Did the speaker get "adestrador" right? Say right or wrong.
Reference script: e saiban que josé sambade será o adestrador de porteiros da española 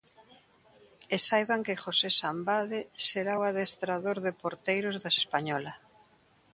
right